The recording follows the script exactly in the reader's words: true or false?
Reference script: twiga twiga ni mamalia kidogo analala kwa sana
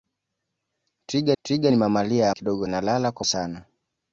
true